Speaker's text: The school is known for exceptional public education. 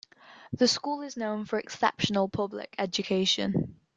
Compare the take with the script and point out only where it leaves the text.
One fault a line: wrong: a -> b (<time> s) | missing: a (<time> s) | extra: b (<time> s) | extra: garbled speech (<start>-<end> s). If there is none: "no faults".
no faults